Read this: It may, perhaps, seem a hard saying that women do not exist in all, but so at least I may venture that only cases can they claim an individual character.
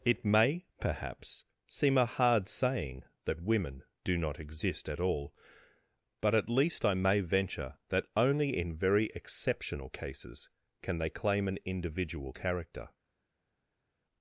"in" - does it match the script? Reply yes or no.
no